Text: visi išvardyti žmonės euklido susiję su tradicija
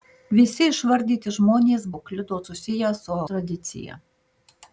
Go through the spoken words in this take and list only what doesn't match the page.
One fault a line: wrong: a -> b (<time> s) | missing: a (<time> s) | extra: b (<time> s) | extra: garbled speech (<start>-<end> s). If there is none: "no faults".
no faults